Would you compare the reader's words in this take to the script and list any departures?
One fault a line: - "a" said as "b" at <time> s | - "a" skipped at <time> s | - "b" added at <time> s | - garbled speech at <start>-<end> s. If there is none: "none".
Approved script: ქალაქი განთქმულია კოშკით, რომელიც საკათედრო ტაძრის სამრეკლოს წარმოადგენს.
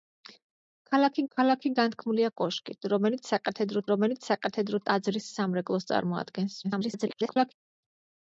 - "ქალაქი" added at 1.4 s
- "რომელიც საკათედრო" added at 3.9 s
- garbled speech at 6.6-7.5 s